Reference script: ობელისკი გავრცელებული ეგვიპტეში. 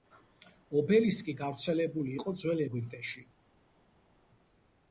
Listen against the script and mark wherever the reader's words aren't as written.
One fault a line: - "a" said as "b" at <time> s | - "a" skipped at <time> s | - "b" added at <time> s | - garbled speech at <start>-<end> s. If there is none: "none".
- "იყო ძველ" added at 2.2 s